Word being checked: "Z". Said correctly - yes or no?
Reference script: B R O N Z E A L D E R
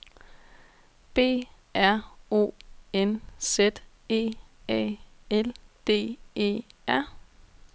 yes